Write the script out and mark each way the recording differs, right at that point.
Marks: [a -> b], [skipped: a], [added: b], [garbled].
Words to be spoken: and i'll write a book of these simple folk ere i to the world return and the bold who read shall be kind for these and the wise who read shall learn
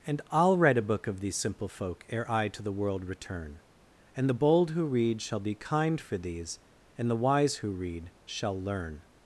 and i'll write a book of these simple folk ere i to the world return and the bold who read shall be kind for these and the wise who read shall learn